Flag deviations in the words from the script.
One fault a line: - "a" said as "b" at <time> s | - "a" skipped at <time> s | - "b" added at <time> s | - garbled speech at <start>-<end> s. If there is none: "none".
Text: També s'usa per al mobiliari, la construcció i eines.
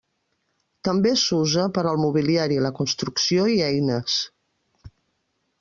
none